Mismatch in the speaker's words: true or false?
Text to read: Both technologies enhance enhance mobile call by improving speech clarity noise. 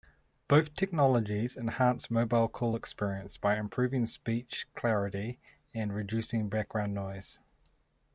true